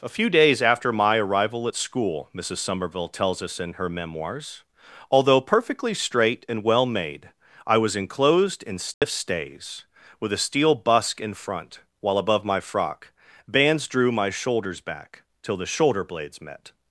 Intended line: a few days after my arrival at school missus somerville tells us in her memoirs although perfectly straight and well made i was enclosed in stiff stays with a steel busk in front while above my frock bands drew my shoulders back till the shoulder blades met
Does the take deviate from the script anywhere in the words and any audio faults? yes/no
yes